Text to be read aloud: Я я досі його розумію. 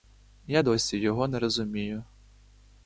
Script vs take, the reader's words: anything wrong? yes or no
yes